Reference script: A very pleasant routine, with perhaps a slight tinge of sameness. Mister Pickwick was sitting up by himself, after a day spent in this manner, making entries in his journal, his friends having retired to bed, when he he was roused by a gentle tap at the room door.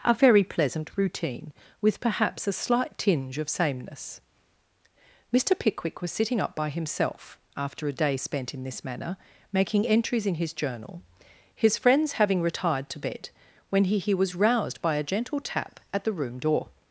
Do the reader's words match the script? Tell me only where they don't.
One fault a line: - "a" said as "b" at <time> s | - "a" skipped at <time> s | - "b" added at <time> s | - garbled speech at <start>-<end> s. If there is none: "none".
none